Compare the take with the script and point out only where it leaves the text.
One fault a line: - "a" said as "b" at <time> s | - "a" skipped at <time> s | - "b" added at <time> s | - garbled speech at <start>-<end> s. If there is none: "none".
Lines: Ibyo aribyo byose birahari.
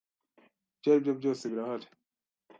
none